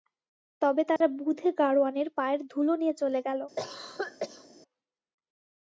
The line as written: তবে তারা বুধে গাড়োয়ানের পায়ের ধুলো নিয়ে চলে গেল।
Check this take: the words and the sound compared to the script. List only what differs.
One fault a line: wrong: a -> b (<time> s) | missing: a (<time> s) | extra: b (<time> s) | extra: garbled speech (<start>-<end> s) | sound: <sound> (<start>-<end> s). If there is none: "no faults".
sound: dropout (1.0-1.0 s)
sound: cough (3.6-4.5 s)